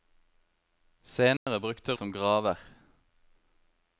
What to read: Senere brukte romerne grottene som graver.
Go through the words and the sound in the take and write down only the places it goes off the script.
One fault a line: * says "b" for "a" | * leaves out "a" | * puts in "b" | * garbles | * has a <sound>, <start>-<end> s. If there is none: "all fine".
* has a dropout, 1.4-1.5 s
* leaves out "romerne grottene"